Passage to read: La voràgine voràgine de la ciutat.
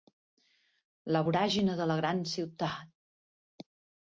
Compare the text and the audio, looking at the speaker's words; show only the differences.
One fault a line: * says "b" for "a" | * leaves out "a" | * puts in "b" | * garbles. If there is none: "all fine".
* leaves out "voràgine"
* puts in "gran"